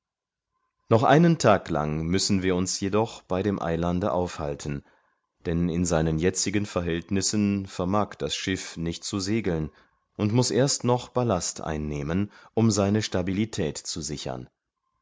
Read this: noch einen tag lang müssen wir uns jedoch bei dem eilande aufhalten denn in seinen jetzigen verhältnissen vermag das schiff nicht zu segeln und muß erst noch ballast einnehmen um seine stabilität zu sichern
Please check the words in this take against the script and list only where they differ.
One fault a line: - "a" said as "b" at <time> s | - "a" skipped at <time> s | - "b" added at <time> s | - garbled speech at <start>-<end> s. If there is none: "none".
none